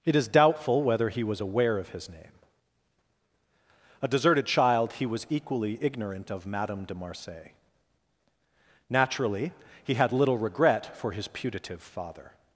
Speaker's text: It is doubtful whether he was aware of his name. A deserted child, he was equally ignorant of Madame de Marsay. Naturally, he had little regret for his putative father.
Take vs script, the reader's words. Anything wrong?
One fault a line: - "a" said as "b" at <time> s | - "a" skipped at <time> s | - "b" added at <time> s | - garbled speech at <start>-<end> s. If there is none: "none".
none